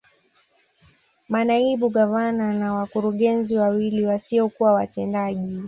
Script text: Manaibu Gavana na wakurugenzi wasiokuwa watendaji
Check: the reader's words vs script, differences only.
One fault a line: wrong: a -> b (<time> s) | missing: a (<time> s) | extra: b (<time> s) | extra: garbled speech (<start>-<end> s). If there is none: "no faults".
extra: wawili (3.6 s)